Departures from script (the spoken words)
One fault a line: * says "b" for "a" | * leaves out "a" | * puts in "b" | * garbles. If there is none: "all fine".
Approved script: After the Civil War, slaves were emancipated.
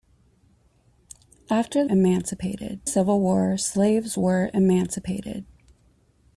* says "emancipated" for "the"